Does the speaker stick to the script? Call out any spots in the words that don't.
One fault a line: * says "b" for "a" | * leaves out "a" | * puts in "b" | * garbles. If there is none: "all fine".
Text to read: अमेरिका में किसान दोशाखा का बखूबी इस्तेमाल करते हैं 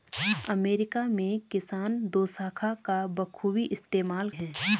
* leaves out "करते"